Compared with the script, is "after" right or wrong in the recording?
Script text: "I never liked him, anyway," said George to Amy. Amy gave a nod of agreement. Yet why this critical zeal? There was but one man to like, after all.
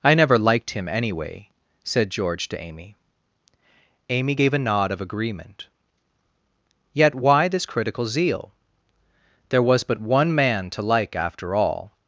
right